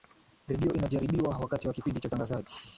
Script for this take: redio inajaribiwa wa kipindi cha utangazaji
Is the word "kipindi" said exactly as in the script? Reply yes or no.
yes